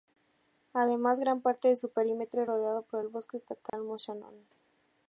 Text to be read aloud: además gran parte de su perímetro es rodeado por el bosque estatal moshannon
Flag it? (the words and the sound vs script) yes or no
yes